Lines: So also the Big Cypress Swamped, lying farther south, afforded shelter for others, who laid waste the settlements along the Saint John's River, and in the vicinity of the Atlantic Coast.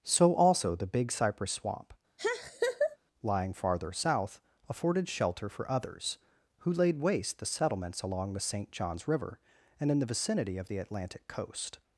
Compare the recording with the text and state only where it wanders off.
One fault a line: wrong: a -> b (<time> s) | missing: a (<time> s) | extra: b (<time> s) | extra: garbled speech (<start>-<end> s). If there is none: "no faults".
wrong: Swamped -> Swamp (1.5 s)